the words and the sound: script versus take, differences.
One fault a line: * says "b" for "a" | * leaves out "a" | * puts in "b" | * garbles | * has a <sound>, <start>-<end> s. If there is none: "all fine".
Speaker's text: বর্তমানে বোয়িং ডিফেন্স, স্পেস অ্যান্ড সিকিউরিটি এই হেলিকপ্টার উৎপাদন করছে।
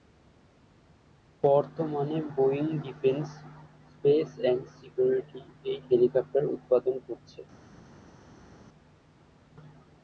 all fine